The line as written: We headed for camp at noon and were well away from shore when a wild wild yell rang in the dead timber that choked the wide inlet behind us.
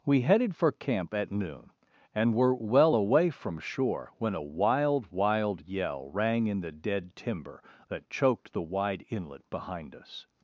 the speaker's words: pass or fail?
pass